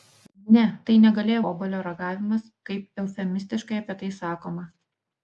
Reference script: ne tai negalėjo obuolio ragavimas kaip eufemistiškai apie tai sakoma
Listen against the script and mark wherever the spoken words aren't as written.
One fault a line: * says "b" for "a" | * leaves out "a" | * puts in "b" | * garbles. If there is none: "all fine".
all fine